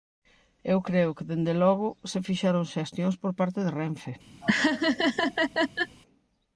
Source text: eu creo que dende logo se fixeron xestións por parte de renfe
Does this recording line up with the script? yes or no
yes